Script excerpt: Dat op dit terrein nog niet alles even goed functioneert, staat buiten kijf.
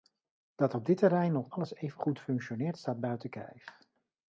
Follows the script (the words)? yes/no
no